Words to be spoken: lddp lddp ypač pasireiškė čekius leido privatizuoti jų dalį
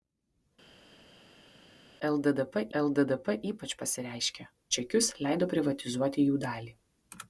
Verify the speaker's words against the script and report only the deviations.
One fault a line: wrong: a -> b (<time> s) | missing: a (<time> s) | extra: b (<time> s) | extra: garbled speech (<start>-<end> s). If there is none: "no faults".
no faults